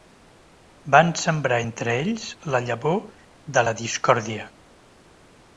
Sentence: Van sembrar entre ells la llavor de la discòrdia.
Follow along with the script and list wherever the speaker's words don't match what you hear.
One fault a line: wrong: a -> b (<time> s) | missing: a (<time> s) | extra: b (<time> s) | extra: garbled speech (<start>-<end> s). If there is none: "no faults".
no faults